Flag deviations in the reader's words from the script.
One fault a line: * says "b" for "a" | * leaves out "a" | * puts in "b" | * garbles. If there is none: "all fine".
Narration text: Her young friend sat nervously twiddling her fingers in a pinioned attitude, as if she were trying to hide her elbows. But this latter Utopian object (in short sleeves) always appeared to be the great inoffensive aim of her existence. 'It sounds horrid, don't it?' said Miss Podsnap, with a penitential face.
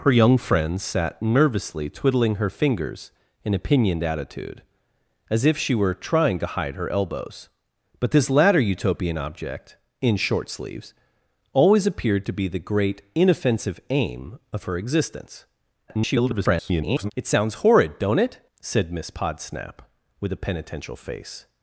* garbles